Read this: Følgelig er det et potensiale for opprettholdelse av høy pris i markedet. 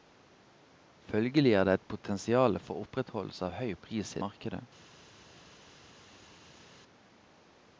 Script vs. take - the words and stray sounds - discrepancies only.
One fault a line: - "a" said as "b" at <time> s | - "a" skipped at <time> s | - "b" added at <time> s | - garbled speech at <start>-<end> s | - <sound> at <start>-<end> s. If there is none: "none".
none